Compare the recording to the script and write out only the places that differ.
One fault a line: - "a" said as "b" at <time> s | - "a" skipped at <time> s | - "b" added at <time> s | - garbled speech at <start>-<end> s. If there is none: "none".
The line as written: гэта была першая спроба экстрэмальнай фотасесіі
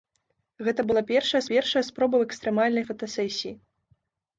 - "першая" added at 1.5 s